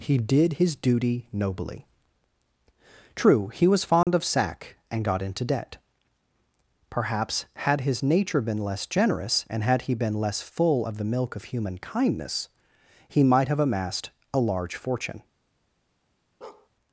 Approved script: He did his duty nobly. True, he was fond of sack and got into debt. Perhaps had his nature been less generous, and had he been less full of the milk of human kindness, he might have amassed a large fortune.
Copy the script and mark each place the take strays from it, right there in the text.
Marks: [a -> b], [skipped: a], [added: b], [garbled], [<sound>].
He did his duty nobly. True, he was fond [dropout] of sack and got into debt. Perhaps had his nature been less generous, and had he been less full of the milk of human kindness, he might have amassed a large fortune. [bark]